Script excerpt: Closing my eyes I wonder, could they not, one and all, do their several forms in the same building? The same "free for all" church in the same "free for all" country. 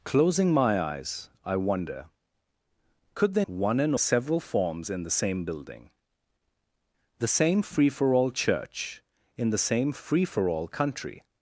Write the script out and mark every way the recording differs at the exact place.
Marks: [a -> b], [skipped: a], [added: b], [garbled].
Closing my eyes I wonder, could they [skipped: not,] one and [skipped: all, do their] several forms in the same building? The same "free for all" church in the same "free for all" country.